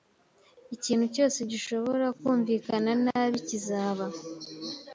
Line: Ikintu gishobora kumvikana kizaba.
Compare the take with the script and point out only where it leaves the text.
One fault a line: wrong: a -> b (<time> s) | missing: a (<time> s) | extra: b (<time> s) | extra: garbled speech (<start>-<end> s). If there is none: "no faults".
extra: cyose (1.1 s)
extra: nabi (3.0 s)